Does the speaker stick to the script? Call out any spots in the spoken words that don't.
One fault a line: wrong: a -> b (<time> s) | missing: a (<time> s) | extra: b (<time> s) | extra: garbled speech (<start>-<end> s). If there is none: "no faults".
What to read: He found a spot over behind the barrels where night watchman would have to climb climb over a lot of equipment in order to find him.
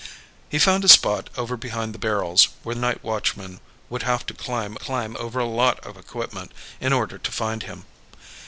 no faults